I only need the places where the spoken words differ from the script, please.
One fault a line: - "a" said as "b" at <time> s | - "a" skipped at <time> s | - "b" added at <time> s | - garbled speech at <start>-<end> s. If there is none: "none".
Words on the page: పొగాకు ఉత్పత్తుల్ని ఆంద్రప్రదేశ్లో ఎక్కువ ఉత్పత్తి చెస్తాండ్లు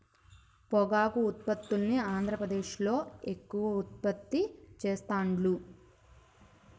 none